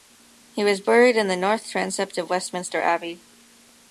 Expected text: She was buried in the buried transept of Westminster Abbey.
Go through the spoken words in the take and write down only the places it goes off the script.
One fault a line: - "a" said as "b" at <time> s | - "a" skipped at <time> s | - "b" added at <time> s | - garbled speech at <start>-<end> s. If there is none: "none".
- "She" said as "He" at 0.5 s
- "buried" said as "north" at 1.4 s